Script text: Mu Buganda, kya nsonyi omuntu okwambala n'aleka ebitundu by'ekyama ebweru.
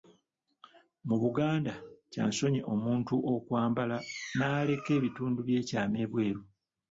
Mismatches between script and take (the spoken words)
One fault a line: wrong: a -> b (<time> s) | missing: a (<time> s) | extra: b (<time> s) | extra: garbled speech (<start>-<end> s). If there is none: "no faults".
no faults